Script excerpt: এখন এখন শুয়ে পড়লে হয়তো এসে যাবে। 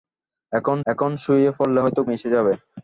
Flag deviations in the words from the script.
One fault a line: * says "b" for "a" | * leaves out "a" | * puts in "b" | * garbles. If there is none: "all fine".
all fine